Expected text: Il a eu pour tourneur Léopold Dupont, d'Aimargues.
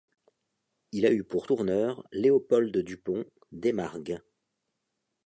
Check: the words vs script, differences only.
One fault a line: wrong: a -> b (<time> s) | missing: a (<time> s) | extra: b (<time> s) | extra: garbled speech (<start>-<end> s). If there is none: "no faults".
no faults